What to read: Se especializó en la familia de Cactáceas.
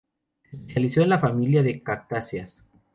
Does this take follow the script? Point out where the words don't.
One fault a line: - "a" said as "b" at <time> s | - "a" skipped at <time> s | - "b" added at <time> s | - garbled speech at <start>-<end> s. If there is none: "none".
none